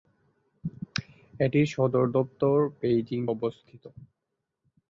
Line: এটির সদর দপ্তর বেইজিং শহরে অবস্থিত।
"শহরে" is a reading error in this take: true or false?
true